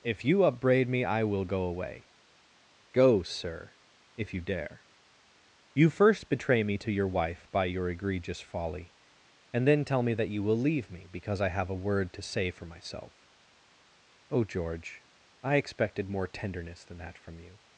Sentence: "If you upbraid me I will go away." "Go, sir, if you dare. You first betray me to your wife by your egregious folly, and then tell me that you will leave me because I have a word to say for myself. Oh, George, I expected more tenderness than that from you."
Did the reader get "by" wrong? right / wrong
right